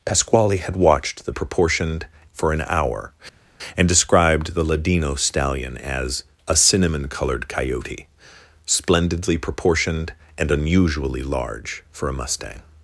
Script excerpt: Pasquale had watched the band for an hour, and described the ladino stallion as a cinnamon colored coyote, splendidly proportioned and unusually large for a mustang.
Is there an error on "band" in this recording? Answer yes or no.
yes